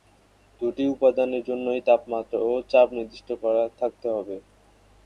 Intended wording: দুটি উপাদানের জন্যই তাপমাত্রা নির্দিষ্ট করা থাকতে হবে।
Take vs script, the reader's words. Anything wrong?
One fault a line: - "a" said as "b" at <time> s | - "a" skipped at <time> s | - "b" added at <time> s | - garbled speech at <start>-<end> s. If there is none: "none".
- "ও চাপ" added at 2.4 s